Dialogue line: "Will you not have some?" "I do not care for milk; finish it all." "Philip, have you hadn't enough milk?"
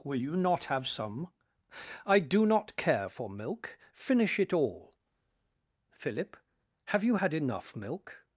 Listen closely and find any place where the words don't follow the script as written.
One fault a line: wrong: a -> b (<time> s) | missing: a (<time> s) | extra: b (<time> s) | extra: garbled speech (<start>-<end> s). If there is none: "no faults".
wrong: hadn't -> had (7.1 s)